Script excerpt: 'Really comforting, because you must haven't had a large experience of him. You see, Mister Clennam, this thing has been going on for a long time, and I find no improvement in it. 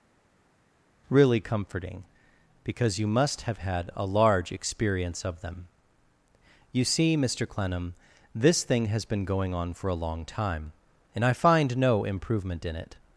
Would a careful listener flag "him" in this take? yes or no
yes